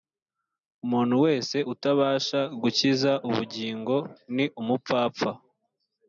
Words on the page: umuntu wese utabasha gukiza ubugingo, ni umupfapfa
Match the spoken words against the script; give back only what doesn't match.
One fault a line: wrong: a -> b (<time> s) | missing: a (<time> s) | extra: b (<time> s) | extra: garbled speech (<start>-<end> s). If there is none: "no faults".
no faults